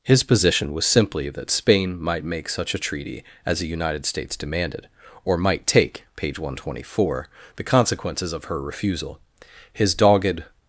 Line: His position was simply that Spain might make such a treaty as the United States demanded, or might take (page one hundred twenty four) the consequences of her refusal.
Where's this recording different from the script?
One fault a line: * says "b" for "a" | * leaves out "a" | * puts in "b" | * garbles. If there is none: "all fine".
* puts in "His dogged"